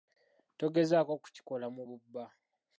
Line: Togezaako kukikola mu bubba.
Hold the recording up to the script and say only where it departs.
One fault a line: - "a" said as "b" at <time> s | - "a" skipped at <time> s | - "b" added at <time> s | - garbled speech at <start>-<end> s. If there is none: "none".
none